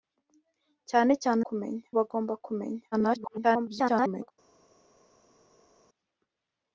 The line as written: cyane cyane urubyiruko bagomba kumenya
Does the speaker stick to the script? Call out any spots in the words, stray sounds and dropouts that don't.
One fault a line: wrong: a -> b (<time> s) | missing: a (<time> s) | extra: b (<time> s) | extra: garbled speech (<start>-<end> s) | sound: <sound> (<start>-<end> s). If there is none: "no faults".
wrong: urubyiruko -> kumenya (1.5 s)
extra: garbled speech (2.9-4.3 s)